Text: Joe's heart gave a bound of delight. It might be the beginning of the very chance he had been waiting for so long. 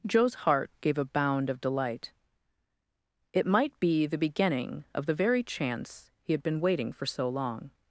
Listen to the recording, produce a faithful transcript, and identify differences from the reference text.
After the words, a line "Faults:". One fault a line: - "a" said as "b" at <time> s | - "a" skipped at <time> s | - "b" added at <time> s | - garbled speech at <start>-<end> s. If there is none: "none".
Joe's heart gave a bound of delight. It might be the beginning of the very chance he had been waiting for so long.
Faults:
none